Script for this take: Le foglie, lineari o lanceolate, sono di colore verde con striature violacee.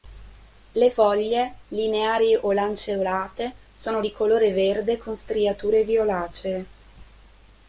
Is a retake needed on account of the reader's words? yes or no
no